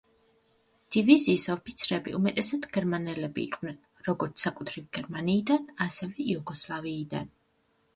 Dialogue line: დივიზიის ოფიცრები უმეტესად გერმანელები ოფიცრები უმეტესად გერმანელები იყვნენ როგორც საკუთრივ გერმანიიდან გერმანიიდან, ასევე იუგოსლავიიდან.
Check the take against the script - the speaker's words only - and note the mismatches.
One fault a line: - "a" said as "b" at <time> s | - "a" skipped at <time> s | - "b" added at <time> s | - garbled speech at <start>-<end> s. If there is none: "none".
- "ოფიცრები უმეტესად გერმანელები" skipped at 3.5 s
- "გერმანიიდან" skipped at 5.7 s